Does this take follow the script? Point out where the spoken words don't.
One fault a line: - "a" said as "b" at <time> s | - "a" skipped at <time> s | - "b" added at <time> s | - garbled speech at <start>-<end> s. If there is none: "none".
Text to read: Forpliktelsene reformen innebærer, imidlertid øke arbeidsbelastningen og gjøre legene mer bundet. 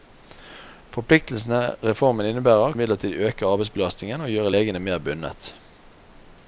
none